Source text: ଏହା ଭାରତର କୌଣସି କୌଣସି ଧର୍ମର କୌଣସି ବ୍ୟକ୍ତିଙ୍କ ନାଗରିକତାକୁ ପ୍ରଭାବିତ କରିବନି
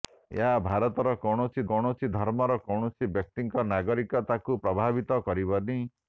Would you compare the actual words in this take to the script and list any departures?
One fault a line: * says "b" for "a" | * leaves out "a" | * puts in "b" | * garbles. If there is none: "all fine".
all fine